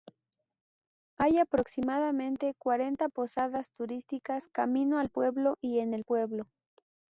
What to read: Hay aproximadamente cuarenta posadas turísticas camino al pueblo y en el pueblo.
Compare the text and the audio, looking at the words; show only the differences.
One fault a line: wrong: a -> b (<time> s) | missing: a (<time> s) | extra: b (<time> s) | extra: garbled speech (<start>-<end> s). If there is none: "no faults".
no faults